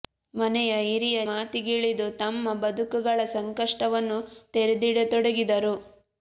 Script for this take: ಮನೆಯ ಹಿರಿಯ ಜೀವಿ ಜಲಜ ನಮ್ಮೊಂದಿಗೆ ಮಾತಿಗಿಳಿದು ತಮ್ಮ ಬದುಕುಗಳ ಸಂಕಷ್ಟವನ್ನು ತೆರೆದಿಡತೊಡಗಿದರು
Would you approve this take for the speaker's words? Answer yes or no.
no